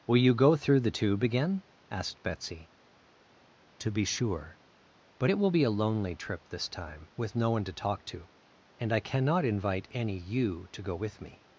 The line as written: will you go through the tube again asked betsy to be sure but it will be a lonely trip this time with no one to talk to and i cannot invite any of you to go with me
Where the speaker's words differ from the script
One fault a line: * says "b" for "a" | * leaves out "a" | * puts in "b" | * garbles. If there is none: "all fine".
* leaves out "of"